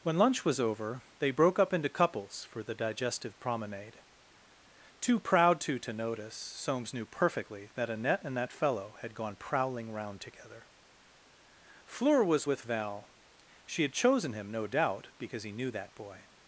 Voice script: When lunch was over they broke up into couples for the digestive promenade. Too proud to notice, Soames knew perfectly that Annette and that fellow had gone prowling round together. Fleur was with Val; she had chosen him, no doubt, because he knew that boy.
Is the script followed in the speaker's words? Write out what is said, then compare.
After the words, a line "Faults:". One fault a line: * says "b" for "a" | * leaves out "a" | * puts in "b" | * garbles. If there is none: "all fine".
When lunch was over they broke up into couples for the digestive promenade. Too proud to to notice, Soames knew perfectly that Annette and that fellow had gone prowling round together. Fleur was with Val; she had chosen him, no doubt, because he knew that boy.
Faults:
* puts in "to"